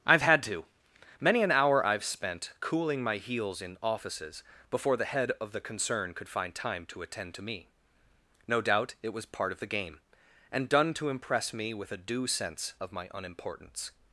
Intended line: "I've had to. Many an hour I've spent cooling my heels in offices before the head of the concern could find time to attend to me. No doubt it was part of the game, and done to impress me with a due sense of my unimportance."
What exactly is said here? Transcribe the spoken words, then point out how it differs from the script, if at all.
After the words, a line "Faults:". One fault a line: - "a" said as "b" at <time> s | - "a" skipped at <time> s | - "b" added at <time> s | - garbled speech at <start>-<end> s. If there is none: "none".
"I've had to. Many an hour I've spent cooling my heels in offices before the head of the concern could find time to attend to me. No doubt it was part of the game, and done to impress me with a due sense of my unimportance."
Faults:
none